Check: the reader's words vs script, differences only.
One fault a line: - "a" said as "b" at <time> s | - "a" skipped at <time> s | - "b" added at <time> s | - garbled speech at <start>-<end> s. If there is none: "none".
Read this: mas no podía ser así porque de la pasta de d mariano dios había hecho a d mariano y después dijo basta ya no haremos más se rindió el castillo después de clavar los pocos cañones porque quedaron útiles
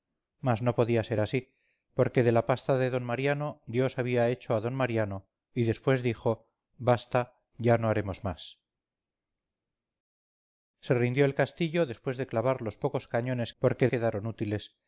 none